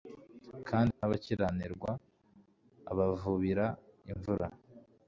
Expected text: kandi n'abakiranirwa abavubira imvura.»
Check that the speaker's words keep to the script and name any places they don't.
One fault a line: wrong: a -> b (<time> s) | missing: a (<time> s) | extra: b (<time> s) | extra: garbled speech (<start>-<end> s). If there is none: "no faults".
no faults